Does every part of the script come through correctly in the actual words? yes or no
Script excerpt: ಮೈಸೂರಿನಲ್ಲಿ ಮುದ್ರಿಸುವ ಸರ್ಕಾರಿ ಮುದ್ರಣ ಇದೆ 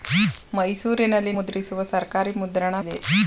yes